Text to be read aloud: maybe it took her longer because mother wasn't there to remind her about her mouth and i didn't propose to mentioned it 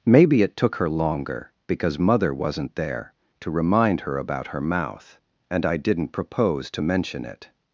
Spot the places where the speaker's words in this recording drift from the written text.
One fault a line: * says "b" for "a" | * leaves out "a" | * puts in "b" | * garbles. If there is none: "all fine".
* says "mention" for "mentioned"